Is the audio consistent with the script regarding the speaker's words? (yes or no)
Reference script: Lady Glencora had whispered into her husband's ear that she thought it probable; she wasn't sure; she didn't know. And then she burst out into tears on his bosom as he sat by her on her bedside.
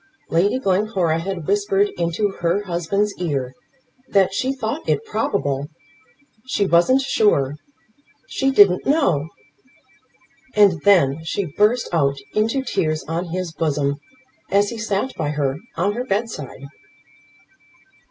yes